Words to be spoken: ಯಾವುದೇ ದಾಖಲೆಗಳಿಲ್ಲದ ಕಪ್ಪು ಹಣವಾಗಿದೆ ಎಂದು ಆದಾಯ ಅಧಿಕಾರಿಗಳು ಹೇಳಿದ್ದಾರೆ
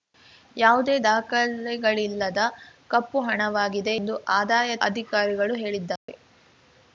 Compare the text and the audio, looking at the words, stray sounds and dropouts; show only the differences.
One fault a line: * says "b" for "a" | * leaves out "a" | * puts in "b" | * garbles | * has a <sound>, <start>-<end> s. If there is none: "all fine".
* has a dropout, 6.0-6.1 s